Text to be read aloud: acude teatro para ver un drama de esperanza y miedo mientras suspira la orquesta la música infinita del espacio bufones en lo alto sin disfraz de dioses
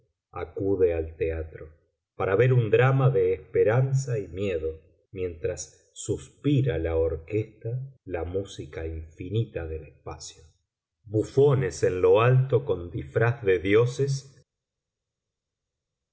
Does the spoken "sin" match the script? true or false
false